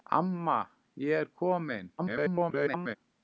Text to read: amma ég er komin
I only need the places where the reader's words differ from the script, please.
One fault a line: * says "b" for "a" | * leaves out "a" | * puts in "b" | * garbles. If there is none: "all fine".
* garbles